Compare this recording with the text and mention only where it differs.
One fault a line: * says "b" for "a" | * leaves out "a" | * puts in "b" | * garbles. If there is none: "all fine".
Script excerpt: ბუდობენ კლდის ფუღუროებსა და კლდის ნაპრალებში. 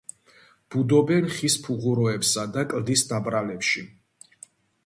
* says "ხის" for "კლდის"